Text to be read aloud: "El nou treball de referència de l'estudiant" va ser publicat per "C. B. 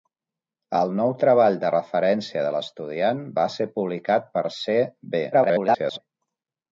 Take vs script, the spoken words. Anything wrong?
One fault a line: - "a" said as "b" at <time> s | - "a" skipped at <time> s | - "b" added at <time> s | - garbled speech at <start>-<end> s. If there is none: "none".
- garbled speech at 5.3-6.0 s